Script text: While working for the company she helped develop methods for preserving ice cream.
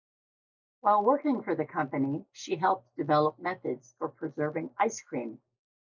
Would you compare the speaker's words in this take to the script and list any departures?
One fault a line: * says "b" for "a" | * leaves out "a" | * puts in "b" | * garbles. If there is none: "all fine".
all fine